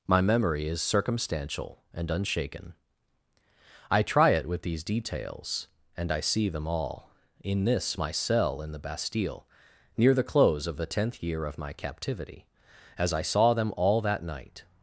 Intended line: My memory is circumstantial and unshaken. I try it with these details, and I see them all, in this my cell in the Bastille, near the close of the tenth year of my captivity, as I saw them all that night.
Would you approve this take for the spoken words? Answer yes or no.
yes